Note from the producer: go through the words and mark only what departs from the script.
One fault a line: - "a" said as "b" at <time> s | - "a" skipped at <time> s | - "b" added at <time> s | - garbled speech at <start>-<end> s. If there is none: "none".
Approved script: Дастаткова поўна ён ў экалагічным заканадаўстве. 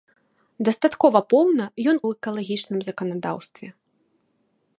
none